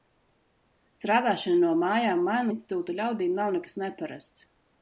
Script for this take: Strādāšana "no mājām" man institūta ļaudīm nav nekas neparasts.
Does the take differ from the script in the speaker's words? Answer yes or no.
no